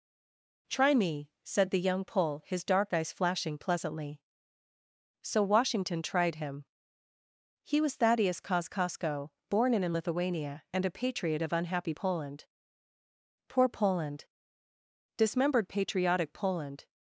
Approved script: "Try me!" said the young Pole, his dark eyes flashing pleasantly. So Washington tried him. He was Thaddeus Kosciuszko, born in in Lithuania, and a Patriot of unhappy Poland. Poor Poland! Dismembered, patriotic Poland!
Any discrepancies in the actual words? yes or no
no